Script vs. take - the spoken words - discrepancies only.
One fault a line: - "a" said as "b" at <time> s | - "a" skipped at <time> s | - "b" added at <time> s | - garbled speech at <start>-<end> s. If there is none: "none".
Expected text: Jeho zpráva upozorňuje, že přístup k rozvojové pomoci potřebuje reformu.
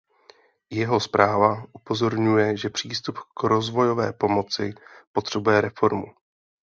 none